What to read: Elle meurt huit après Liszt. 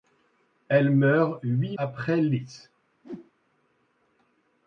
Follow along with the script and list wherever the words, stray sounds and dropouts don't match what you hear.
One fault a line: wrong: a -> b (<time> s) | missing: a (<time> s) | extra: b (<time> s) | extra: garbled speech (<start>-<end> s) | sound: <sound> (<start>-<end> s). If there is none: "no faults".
sound: whoosh (3.0-3.3 s)